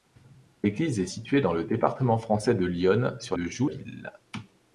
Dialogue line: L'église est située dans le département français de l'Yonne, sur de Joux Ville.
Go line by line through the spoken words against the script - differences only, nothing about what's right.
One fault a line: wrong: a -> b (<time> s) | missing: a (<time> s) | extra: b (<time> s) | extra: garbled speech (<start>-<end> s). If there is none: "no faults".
no faults